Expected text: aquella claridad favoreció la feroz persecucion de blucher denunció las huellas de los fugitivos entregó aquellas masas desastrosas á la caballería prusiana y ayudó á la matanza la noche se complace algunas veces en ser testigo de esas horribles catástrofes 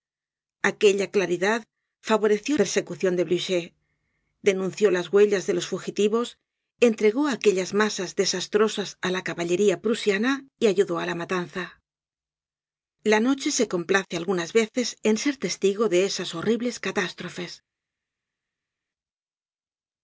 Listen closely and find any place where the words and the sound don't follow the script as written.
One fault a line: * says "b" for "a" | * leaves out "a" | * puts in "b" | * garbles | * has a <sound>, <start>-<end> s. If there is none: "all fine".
* leaves out "la feroz"